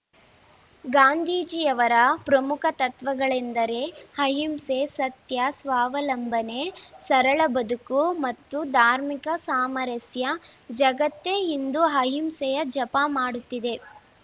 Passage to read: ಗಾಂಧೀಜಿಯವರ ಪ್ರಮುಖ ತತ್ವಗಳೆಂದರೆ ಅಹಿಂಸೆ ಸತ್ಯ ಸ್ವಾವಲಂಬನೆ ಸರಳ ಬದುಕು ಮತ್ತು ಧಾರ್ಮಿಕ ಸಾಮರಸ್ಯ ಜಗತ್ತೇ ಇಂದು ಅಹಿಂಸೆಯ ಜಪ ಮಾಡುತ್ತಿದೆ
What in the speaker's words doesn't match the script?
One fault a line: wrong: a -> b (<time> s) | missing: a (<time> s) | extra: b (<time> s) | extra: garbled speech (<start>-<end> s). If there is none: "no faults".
no faults